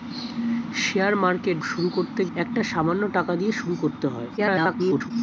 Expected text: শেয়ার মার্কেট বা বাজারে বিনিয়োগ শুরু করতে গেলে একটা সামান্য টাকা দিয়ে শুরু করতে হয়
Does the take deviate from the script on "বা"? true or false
true